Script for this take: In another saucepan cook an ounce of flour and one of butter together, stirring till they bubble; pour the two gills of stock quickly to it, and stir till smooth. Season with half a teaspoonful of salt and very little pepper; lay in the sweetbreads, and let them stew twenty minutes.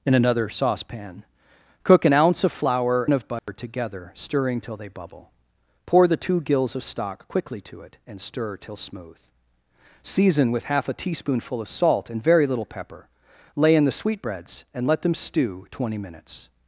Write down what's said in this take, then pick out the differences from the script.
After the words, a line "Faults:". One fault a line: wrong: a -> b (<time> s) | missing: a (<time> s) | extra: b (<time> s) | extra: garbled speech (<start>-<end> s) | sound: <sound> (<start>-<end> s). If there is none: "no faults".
In another saucepan cook an ounce of flour of butter together, stirring till they bubble; pour the two gills of stock quickly to it, and stir till smooth. Season with half a teaspoonful of salt and very little pepper; lay in the sweetbreads, and let them stew twenty minutes.
Faults:
missing: and one (3.0 s)
sound: dropout (3.4-3.5 s)